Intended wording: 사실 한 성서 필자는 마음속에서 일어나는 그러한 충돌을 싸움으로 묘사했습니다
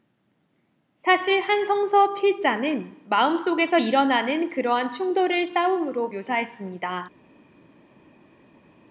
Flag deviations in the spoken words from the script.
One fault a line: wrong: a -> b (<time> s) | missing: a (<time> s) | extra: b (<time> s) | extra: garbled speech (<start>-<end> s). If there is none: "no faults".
no faults